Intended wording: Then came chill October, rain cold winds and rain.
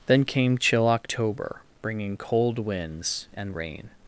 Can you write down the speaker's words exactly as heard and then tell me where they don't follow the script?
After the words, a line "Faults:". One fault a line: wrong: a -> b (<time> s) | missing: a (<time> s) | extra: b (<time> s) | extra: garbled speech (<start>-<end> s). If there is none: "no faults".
Then came chill October, bringing cold winds and rain.
Faults:
wrong: rain -> bringing (1.8 s)